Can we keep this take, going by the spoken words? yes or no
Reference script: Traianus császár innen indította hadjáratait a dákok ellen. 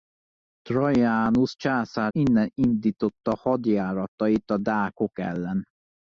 yes